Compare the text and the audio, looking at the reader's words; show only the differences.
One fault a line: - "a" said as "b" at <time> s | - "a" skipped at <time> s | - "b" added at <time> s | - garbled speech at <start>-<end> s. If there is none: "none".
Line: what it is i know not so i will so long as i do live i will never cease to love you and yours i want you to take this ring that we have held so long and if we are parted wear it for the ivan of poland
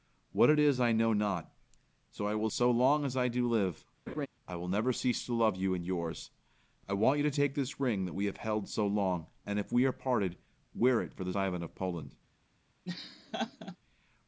none